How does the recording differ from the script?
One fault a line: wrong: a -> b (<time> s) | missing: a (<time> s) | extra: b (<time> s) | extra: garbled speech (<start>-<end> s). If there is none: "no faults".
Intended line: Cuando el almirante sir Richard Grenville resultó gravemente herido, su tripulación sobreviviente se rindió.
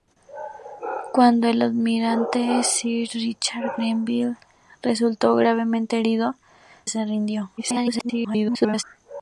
missing: su tripulación sobreviviente (6.4 s)
extra: garbled speech (7.6-8.8 s)